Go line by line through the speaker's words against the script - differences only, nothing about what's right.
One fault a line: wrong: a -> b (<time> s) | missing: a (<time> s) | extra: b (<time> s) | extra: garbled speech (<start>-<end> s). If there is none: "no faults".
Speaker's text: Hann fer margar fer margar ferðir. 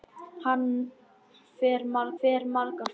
no faults